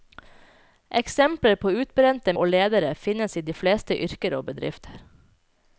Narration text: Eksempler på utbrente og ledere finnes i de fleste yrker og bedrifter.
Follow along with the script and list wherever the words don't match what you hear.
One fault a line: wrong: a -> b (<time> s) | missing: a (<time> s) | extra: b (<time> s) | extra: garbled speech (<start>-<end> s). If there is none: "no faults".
no faults